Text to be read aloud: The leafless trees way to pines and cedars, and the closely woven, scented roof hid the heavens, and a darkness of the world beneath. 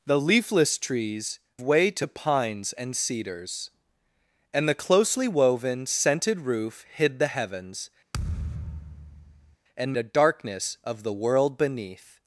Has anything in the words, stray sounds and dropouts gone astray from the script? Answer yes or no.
yes